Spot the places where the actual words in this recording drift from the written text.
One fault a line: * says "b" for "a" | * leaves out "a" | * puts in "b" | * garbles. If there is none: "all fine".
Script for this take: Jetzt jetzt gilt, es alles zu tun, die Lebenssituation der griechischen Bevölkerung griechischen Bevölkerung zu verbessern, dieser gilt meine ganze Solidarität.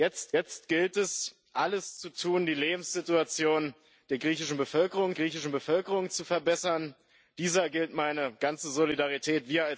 all fine